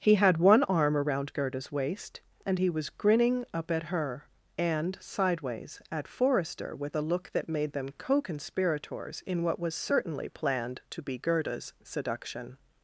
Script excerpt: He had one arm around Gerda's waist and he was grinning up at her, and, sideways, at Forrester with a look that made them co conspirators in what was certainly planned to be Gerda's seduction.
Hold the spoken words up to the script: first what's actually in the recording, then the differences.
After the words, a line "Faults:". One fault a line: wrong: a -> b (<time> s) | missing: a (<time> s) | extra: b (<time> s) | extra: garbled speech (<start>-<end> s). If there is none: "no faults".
He had one arm around Gerda's waist and he was grinning up at her, and, sideways, at Forrester with a look that made them co conspirators in what was certainly planned to be Gerda's seduction.
Faults:
no faults